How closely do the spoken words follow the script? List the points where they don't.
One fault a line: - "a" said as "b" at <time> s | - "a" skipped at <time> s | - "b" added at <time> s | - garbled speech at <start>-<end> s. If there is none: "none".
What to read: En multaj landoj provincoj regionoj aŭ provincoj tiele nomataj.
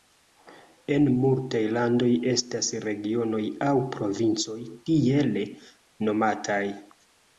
- "provincoj" said as "estas" at 2.3 s